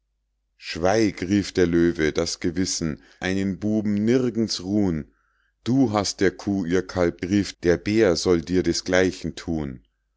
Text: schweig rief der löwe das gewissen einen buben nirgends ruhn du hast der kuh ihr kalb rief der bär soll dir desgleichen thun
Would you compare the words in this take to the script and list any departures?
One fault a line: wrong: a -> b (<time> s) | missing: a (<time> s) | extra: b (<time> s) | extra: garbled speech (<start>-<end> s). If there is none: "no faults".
no faults